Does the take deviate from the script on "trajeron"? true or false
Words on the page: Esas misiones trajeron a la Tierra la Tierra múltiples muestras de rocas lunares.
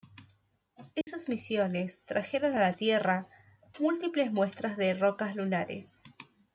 false